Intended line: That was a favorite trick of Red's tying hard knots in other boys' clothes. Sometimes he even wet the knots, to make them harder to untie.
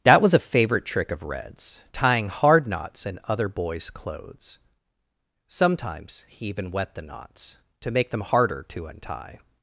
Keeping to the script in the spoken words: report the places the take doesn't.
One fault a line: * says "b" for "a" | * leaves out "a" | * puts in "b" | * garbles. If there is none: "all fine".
all fine